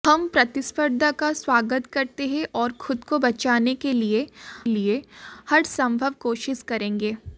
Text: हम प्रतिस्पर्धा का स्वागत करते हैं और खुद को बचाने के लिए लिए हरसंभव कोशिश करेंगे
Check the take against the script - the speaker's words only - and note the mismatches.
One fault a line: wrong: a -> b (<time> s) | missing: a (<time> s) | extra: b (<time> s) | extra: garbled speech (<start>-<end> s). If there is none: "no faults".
no faults